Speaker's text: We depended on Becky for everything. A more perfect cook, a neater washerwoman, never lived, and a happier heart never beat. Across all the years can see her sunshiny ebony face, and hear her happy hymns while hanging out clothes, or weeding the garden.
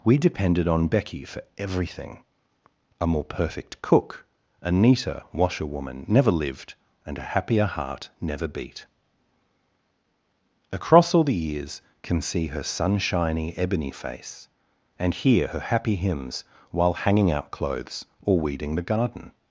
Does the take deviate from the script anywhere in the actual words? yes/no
no